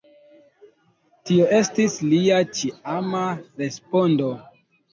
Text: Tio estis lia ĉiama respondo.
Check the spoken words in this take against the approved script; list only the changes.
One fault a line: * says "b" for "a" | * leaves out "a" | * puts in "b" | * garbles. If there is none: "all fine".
all fine